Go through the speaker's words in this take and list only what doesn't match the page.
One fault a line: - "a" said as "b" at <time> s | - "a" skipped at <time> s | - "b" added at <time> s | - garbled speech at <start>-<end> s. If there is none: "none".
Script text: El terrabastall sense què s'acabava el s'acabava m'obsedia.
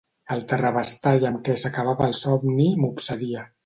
- "sense" said as "amb" at 1.3 s
- "s'acabava" said as "somni" at 2.2 s